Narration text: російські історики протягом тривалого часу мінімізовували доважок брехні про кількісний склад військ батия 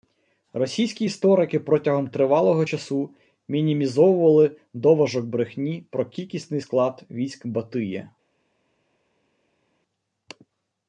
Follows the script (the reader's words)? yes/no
yes